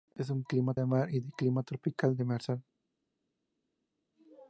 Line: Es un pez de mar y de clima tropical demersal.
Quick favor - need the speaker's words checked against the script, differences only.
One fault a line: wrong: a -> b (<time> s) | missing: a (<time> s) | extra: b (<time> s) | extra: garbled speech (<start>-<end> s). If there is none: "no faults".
wrong: pez -> clima (0.4 s)